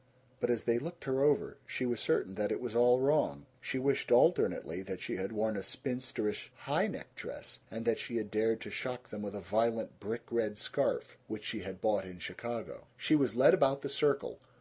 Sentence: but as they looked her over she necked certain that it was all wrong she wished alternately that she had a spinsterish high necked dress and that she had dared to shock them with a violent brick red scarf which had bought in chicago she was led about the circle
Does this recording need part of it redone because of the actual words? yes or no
yes